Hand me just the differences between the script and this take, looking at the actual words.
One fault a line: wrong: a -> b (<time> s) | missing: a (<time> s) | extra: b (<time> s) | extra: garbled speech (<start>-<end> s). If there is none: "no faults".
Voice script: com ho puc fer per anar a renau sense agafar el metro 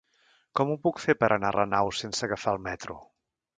no faults